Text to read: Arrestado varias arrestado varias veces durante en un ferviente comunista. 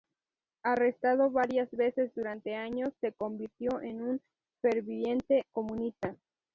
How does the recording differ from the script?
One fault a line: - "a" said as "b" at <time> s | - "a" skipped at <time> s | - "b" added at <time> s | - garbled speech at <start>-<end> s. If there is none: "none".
- "arrestado varias veces durante" said as "veces durante años se convirtió" at 1.7 s